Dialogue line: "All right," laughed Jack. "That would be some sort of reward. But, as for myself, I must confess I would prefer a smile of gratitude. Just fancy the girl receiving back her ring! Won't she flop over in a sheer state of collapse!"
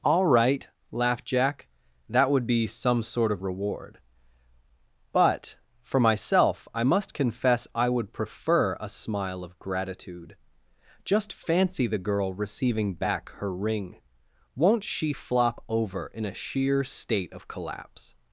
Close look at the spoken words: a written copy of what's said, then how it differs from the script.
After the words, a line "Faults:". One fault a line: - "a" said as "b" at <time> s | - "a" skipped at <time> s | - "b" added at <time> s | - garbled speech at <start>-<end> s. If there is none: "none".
"All right," laughed Jack. "That would be some sort of reward. But, for myself, I must confess I would prefer a smile of gratitude. Just fancy the girl receiving back her ring! Won't she flop over in a sheer state of collapse!"
Faults:
- "as" skipped at 5.6 s